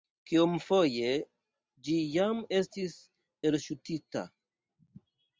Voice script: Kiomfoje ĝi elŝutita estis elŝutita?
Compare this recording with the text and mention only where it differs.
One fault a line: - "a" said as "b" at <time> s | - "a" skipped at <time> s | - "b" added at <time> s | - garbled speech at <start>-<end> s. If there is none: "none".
- "elŝutita" said as "jam" at 2.1 s